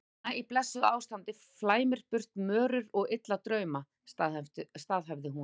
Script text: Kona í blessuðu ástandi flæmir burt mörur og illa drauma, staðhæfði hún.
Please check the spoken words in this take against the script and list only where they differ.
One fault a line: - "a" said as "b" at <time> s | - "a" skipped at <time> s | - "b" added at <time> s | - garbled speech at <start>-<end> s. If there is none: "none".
none